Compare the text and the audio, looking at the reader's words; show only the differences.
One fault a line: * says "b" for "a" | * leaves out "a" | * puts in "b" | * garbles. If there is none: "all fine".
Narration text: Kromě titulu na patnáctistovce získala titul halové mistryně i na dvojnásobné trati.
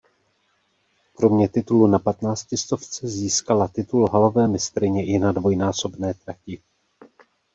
all fine